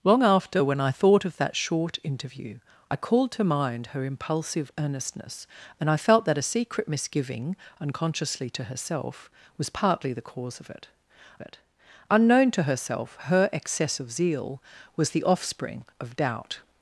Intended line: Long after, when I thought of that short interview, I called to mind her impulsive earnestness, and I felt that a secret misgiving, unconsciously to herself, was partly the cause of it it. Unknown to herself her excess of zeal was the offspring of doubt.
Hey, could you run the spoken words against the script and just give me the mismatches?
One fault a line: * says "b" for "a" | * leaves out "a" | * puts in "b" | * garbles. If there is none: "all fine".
all fine